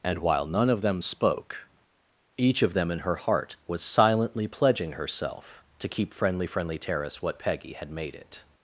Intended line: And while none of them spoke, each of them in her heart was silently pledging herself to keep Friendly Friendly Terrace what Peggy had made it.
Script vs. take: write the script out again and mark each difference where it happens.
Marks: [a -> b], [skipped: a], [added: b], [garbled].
And while none of them spoke, each of them in her heart was silently pledging herself to keep Friendly Friendly Terrace what Peggy had made it.